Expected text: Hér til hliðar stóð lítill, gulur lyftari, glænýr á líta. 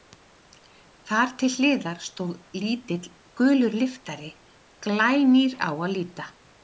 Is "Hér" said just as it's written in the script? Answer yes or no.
no